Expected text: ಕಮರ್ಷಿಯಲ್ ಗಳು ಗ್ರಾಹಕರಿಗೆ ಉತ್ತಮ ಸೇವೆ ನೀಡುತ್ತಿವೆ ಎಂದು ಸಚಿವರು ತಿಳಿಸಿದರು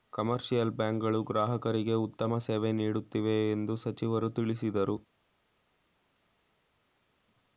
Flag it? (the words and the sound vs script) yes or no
yes